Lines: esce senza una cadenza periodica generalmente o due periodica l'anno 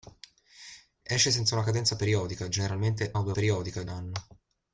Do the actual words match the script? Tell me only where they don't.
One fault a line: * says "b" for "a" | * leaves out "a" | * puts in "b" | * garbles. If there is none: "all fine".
all fine